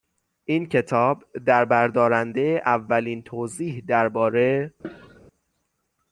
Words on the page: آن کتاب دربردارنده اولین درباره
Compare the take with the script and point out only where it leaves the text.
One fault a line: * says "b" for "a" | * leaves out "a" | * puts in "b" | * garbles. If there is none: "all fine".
* says "این" for "آن"
* puts in "توضیح"